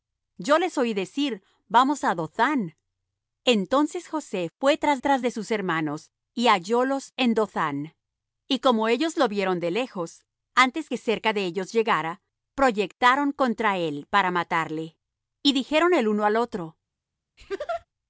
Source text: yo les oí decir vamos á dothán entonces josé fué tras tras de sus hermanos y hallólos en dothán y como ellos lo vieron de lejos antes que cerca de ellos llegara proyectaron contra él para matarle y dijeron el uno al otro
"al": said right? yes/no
yes